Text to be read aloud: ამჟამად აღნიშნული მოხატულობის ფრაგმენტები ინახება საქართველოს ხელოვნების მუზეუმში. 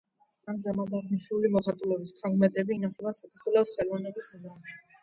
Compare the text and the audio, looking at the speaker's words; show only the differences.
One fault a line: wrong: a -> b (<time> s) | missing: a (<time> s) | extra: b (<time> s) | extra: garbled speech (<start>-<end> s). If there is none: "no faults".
no faults